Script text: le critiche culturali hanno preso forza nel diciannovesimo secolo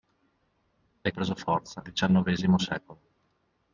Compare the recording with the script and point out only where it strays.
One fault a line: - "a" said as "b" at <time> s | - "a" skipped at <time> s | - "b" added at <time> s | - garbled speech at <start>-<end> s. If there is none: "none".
- "critiche culturali hanno" skipped at 1.1 s
- "nel" skipped at 1.8 s